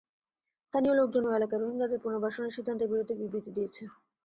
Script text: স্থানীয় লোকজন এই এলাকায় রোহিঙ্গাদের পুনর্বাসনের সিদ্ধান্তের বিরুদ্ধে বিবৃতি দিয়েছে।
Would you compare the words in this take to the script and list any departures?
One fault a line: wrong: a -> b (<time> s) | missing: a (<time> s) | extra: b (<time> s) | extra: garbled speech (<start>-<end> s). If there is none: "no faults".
wrong: এই -> ওই (1.2 s)